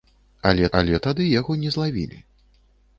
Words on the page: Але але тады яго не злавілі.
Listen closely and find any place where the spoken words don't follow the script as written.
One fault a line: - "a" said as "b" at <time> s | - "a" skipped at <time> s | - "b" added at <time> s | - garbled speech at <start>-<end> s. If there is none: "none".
none